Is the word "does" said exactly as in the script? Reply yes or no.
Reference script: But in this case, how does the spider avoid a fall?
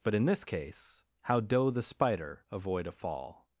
no